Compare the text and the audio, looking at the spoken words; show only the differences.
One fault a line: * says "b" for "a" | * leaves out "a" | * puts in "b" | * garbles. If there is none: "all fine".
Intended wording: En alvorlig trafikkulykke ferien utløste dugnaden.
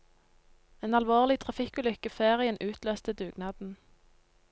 all fine